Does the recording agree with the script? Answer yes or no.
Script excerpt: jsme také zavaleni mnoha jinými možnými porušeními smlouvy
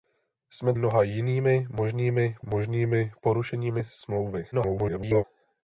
no